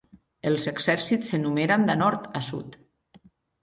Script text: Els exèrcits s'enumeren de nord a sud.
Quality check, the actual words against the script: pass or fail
pass